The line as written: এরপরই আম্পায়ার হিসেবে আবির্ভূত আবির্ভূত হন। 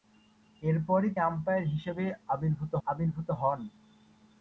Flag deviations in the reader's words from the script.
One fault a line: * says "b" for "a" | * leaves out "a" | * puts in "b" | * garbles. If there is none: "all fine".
all fine